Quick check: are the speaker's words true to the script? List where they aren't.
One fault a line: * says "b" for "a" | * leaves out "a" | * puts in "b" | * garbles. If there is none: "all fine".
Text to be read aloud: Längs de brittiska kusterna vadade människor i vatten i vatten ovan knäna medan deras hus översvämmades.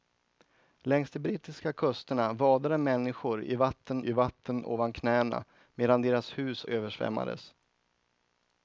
all fine